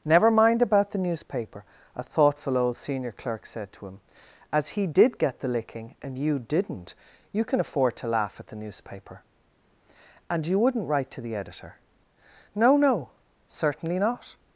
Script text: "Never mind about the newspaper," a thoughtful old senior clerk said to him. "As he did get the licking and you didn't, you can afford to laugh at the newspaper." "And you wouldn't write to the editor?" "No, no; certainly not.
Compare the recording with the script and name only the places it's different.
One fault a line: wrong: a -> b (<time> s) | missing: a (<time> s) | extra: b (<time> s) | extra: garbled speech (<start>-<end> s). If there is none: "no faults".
no faults